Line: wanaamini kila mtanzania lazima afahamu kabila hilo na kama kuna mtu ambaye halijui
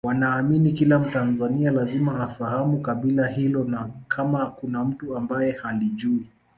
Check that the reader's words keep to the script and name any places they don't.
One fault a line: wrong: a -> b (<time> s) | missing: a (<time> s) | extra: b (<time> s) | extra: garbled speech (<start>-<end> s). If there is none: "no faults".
no faults